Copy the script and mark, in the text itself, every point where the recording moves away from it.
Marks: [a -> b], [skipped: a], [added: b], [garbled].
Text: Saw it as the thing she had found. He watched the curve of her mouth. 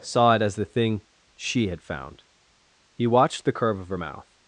Saw it as the thing she had found. He watched the curve of her mouth.